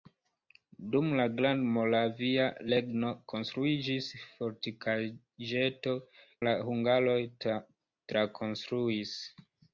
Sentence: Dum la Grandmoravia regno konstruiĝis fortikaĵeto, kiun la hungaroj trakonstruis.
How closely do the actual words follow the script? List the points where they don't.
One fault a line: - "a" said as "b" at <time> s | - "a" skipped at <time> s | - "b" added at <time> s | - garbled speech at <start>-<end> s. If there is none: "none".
- "kiun" skipped at 6.0 s